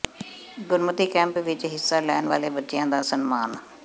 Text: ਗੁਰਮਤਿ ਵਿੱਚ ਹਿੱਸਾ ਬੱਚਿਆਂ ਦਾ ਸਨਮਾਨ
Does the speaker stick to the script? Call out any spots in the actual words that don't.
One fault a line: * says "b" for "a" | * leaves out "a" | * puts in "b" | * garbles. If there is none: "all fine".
* puts in "ਕੈਂਪ"
* puts in "ਲੈਣ ਵਾਲੇ"